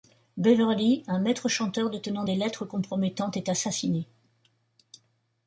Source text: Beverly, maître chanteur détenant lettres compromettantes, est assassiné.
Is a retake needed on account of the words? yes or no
yes